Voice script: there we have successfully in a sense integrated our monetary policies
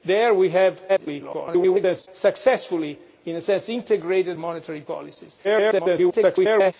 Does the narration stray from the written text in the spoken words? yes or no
yes